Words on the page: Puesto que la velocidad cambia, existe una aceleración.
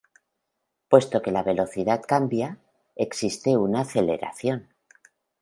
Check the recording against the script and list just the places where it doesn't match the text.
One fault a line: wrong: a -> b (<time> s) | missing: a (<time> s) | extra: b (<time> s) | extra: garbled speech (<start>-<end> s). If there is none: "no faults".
no faults